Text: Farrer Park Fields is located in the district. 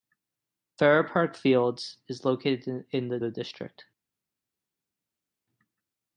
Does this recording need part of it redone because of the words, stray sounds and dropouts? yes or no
yes